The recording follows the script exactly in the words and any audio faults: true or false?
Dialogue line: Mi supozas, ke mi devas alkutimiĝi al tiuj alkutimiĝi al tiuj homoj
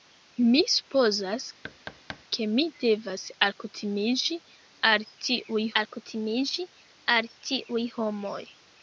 false